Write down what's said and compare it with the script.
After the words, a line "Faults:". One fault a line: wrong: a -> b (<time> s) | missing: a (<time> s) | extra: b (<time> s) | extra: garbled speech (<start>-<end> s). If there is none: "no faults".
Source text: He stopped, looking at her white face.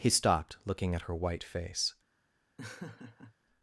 He stopped, looking at her white face.
Faults:
no faults